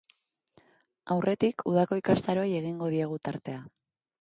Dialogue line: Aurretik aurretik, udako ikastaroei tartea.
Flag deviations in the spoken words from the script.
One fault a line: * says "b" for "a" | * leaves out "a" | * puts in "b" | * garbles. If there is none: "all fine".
* leaves out "aurretik"
* puts in "egingo diegu"